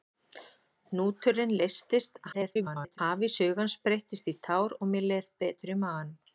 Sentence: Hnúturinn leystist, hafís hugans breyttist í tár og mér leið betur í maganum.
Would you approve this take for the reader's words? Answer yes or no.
no